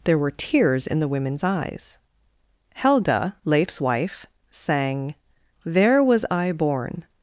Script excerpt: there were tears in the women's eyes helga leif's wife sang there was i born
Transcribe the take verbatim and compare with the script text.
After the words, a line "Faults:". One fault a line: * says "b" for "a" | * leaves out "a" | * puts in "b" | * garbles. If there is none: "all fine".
there were tears in the women's eyes helga leif's wife sang there was i born
Faults:
all fine